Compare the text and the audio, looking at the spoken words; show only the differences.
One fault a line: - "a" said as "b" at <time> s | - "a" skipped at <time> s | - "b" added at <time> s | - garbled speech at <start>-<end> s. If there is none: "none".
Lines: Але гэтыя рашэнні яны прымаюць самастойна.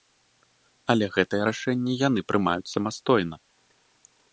none